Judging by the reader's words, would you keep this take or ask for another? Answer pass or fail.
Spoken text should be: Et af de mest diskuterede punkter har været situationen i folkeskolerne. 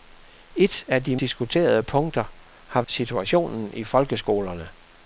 fail